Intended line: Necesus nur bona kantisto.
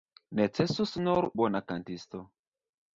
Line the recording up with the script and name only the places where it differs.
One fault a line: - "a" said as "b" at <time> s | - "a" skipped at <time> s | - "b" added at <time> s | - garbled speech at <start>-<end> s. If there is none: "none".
none